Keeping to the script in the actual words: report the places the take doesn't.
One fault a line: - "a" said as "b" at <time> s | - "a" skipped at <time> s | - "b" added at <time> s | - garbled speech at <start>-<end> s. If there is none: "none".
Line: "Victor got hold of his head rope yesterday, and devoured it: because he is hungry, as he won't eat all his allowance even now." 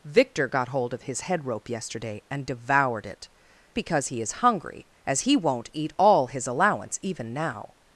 none